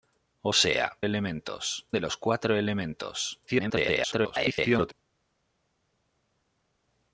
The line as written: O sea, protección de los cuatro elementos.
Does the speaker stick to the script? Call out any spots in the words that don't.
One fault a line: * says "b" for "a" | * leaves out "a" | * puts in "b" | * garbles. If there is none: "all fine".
* says "elementos" for "protección"
* garbles